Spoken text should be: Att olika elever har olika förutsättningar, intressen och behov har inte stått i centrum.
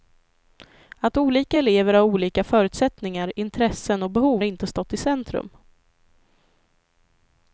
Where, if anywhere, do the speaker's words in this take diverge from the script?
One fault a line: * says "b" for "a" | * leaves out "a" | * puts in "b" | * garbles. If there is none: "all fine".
* leaves out "har"